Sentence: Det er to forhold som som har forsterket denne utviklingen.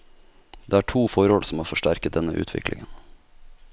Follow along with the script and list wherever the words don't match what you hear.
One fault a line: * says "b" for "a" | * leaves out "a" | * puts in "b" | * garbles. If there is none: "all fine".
* leaves out "som"